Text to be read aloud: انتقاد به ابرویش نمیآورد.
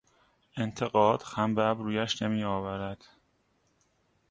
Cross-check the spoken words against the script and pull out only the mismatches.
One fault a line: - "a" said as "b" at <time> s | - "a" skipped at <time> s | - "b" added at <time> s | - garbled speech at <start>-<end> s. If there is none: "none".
- "خم" added at 1.2 s